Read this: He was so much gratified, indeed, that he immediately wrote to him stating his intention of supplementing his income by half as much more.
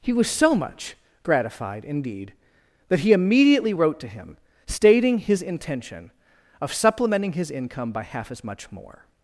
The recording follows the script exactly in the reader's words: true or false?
true